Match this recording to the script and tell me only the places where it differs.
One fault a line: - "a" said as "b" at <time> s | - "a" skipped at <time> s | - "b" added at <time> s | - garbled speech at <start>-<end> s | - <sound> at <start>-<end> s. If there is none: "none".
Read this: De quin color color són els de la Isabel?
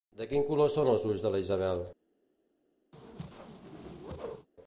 - "color" skipped at 0.7 s
- "ulls" added at 1.1 s
- whoosh at 2.9-4.5 s